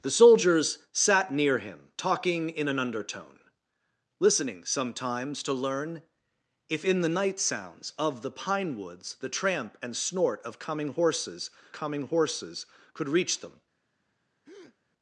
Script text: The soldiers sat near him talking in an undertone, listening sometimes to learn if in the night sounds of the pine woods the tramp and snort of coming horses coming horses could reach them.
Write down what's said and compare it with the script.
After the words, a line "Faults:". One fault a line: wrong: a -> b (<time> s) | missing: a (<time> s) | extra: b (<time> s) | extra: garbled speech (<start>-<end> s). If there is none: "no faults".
The soldiers sat near him talking in an undertone, listening sometimes to learn if in the night sounds of the pine woods the tramp and snort of coming horses coming horses could reach them.
Faults:
no faults